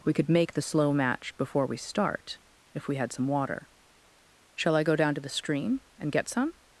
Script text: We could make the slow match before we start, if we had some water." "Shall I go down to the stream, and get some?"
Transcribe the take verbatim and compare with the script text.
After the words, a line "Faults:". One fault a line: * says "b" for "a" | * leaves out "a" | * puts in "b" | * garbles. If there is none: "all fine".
We could make the slow match before we start, if we had some water." "Shall I go down to the stream, and get some?"
Faults:
all fine